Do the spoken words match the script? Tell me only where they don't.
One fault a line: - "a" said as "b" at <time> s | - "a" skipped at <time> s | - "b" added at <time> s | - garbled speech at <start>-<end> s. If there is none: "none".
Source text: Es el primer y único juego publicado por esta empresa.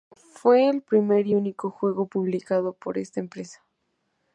- "Es" said as "Fue" at 0.3 s